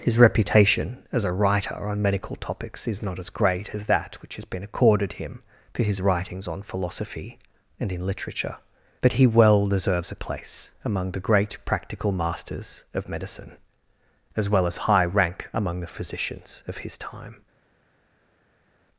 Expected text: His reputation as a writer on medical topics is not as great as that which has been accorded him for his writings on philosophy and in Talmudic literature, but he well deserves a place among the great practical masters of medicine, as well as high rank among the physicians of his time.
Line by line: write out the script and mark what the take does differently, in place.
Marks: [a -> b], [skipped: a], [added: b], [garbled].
His reputation as a writer on medical topics is not as great as that which has been accorded him for his writings on philosophy and in [skipped: Talmudic] literature, but he well deserves a place among the great practical masters of medicine, as well as high rank among the physicians of his time.